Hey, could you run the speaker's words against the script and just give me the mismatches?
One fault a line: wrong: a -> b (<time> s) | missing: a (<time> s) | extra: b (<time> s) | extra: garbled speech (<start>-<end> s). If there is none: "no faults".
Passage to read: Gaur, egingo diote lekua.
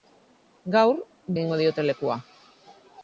no faults